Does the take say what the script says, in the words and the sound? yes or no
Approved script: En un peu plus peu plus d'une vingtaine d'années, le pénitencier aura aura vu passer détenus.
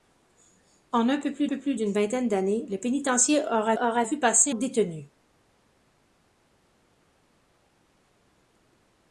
yes